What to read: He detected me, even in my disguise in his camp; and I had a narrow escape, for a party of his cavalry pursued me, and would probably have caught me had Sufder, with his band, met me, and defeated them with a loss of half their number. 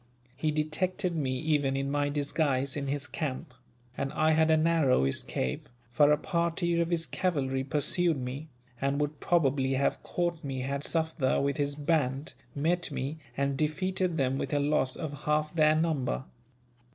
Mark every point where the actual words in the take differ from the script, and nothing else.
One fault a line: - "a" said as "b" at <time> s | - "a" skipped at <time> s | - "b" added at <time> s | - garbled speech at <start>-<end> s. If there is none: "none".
none